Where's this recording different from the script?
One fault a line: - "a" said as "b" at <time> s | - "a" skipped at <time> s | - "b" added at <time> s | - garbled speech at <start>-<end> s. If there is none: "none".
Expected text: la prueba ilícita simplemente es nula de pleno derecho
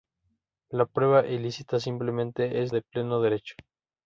- "nula" skipped at 2.7 s